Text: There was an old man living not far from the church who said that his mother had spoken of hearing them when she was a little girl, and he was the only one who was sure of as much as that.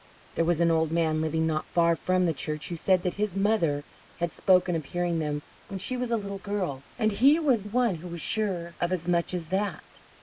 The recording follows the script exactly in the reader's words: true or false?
false